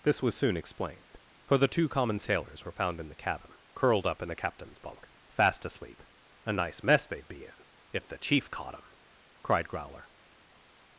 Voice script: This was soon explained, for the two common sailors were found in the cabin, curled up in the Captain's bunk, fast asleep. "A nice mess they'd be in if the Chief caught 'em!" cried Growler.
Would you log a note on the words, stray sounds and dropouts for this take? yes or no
no